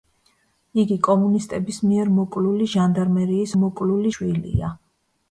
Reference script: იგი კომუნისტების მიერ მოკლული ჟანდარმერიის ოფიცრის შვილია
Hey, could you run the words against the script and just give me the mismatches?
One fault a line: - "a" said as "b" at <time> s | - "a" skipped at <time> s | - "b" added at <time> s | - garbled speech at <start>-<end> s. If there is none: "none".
- "ოფიცრის" said as "მოკლული" at 3.6 s